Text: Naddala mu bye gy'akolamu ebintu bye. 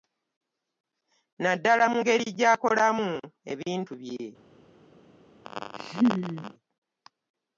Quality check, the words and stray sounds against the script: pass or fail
fail